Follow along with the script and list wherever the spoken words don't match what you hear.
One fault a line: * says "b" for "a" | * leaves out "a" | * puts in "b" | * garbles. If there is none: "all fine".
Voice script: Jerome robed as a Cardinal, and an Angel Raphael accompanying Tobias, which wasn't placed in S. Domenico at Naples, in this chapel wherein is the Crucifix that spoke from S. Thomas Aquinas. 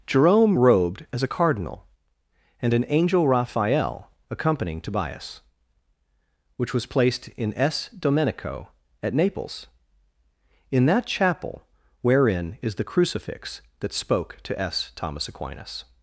* says "was" for "wasn't"
* says "that" for "this"
* says "to" for "from"